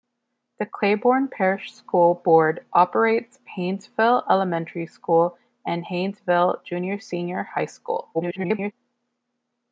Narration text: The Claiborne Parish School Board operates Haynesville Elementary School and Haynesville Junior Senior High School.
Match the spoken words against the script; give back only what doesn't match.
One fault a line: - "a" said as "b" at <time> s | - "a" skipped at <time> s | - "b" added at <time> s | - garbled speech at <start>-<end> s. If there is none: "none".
- garbled speech at 8.1-8.7 s